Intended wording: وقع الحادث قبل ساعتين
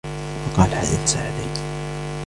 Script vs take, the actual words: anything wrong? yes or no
yes